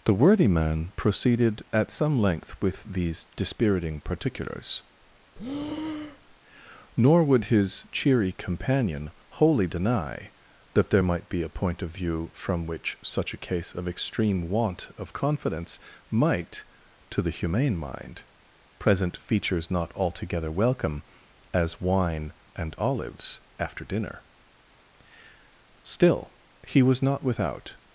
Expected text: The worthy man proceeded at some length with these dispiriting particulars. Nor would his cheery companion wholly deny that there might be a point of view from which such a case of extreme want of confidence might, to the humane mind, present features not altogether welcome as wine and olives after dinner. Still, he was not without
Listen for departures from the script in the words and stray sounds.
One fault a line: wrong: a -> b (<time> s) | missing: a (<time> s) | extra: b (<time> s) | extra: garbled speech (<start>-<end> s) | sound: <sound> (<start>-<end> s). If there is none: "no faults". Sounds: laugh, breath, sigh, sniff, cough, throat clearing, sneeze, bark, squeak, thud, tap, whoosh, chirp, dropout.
sound: breath (5.4-6.4 s)